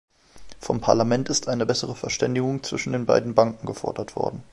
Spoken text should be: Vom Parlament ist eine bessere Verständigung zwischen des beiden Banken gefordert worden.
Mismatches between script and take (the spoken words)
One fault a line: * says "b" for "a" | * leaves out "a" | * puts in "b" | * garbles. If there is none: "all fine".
* says "den" for "des"